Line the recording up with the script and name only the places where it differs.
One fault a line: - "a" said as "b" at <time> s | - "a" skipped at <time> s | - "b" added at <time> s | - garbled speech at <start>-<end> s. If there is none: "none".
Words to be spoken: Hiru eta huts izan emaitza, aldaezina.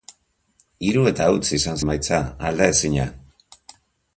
none